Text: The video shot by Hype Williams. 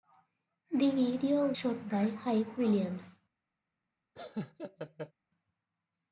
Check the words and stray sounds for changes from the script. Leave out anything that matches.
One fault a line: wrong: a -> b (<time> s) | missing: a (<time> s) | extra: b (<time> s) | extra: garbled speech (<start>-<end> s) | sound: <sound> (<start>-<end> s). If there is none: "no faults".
sound: laugh (4.2-5.1 s)